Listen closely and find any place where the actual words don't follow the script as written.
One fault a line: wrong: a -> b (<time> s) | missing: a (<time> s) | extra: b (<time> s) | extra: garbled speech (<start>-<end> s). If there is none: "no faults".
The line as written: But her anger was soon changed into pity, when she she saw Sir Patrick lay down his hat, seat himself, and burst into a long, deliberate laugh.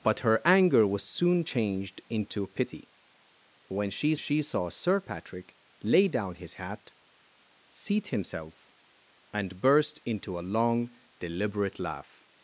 no faults